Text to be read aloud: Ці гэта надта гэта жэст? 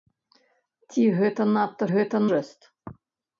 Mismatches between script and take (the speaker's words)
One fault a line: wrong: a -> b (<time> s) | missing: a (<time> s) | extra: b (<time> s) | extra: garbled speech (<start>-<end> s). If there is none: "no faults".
no faults